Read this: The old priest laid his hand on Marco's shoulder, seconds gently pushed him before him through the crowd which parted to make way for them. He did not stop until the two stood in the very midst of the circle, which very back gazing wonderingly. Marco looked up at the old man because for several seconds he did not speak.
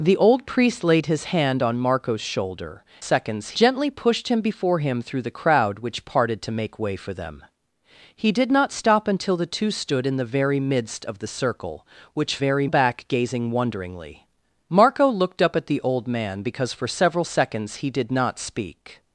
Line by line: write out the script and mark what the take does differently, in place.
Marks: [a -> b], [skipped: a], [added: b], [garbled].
The old priest laid his hand on Marco's shoulder, seconds gently pushed him before him through the crowd which parted to make way for them. He did not stop until the two stood in the very midst of the circle, which very back gazing wonderingly. Marco looked up at the old man because for several seconds he did not speak.